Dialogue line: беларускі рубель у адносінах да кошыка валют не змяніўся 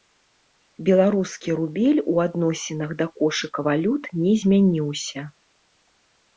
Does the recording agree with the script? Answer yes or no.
yes